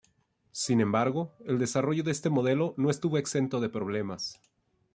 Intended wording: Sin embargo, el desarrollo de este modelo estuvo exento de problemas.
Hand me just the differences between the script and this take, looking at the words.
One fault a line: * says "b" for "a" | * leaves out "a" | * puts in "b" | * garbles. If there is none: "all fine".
* puts in "no"